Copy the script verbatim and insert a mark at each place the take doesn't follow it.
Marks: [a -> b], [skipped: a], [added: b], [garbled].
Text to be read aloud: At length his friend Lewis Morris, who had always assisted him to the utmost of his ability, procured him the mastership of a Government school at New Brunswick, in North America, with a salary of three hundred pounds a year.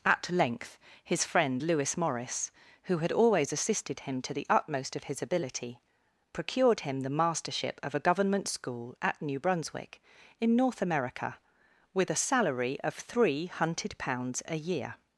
At length his friend Lewis Morris, who had always assisted him to the utmost of his ability, procured him the mastership of a Government school at New Brunswick, in North America, with a salary of three [hundred -> hunted] pounds a year.